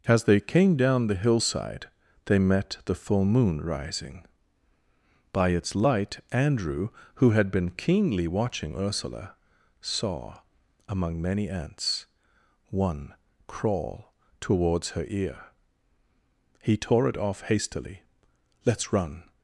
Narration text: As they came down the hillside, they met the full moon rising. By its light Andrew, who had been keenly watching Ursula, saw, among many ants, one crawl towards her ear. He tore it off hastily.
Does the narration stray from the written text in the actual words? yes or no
yes